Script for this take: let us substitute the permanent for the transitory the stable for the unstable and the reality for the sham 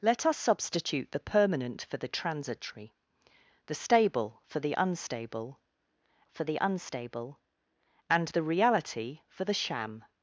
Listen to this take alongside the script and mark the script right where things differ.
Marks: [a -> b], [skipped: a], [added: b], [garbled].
let us substitute the permanent for the transitory the stable for the unstable [added: for the unstable] and the reality for the sham